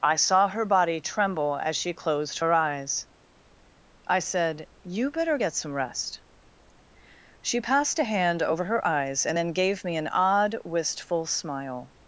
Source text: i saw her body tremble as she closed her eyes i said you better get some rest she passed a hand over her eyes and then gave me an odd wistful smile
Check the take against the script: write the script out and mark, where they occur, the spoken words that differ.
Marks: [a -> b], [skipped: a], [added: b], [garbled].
i saw her body tremble as she closed her eyes i said you better get some rest she passed a hand over her eyes and then gave me an odd wistful smile